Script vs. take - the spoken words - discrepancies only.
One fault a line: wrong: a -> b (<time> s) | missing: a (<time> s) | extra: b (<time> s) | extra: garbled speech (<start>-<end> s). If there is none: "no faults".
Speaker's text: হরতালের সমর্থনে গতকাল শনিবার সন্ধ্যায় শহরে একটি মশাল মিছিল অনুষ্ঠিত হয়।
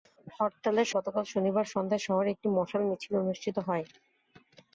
missing: সমর্থনে (0.9 s)